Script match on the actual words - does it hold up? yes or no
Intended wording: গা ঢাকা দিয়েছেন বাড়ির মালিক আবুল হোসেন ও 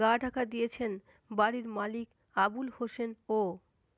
yes